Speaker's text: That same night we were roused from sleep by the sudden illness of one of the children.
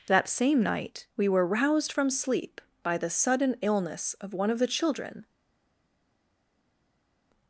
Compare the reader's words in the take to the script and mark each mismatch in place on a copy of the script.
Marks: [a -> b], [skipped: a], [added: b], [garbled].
That same night we were roused from sleep by the sudden illness of one of the children.